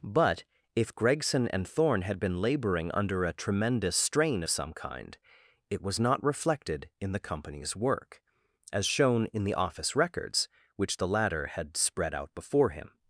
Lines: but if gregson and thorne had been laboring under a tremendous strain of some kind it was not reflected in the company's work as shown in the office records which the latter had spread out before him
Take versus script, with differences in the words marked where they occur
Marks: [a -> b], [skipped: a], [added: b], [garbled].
but if gregson and thorne had been laboring under a tremendous strain [skipped: of] some kind it was not reflected in the company's work as shown in the office records which the latter had spread out before him